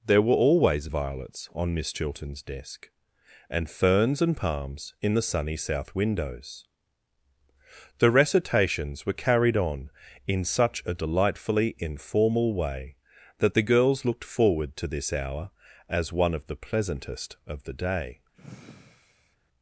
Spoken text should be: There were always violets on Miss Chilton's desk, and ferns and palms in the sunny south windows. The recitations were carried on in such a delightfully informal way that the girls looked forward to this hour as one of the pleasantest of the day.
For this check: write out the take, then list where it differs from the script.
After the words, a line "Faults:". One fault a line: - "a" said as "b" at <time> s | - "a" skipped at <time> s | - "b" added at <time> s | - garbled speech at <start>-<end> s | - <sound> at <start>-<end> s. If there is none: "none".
There were always violets on Miss Chilton's desk, and ferns and palms in the sunny south windows. The recitations were carried on in such a delightfully informal way that the girls looked forward to this hour as one of the pleasantest of the day.
Faults:
- sigh at 18.3-19.4 s